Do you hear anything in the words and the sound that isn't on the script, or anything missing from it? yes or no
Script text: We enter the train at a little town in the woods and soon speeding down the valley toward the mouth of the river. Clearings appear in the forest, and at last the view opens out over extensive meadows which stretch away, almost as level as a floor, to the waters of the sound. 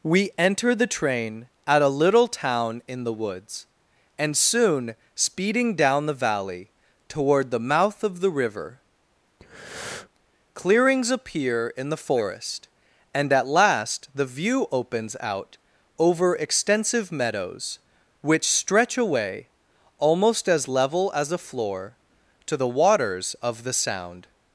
yes